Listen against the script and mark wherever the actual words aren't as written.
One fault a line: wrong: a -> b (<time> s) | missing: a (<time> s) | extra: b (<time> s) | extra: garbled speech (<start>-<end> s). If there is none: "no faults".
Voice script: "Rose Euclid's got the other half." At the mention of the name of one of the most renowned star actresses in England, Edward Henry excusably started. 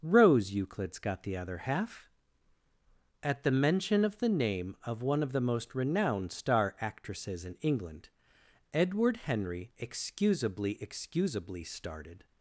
extra: excusably (10.8 s)